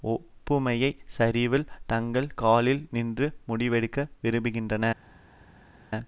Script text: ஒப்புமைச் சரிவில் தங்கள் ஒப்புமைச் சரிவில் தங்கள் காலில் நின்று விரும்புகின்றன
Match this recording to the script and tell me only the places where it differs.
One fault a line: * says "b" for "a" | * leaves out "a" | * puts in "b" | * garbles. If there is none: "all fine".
* leaves out "ஒப்புமைச் சரிவில் தங்கள்"
* puts in "முடிவெடுக்க"